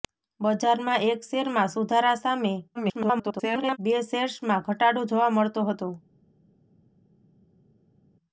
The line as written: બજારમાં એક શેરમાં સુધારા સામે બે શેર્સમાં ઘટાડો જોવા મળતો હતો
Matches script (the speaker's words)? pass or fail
fail